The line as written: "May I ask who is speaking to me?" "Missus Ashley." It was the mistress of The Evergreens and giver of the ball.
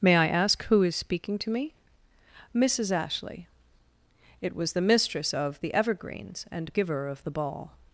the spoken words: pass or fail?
pass